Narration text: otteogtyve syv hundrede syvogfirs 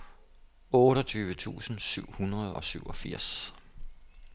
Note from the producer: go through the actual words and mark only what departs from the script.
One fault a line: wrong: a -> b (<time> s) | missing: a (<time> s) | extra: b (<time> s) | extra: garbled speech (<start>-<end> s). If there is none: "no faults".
extra: tusind (1.4 s)
extra: og (2.5 s)